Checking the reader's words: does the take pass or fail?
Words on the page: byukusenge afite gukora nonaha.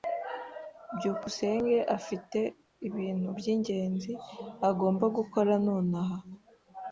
fail